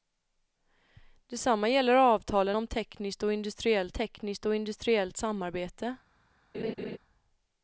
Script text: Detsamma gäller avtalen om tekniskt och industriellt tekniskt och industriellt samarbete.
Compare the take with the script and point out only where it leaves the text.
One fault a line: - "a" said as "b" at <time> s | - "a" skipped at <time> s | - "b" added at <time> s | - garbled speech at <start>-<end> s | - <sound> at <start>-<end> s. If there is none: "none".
- laugh at 6.5-7.0 s